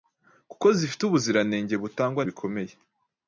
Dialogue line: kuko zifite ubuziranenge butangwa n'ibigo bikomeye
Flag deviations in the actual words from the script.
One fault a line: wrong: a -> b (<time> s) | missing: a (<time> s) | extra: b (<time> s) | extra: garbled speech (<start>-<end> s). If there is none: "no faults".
missing: n'ibigo (2.2 s)